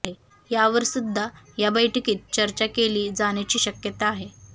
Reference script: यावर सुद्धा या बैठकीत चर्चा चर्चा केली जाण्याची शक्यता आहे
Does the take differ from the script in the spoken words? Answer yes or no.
yes